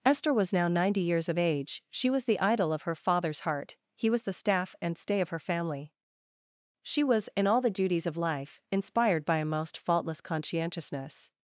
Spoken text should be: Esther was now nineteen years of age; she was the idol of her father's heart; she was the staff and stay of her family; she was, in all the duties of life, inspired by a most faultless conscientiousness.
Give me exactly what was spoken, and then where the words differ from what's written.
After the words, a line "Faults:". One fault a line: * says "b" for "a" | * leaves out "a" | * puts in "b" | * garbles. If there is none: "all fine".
Esther was now ninety years of age; she was the idol of her father's heart; he was the staff and stay of her family; she was, in all the duties of life, inspired by a most faultless conscientiousness.
Faults:
* says "ninety" for "nineteen"
* says "he" for "she"